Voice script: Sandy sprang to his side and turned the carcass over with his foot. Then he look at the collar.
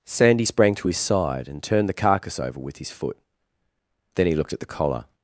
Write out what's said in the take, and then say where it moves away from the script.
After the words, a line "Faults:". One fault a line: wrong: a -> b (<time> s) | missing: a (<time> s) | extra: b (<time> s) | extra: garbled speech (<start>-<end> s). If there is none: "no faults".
Sandy sprang to his side and turned the carcass over with his foot. Then he looked at the collar.
Faults:
wrong: look -> looked (4.3 s)